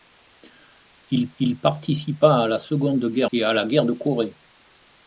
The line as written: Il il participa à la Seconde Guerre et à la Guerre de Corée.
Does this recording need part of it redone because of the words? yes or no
no